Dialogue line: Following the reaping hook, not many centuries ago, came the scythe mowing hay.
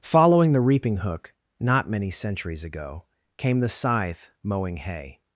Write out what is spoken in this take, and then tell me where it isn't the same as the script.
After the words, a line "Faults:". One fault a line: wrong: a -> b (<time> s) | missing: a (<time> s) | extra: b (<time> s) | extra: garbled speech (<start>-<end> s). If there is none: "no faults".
Following the reaping hook, not many centuries ago, came the scythe mowing hay.
Faults:
no faults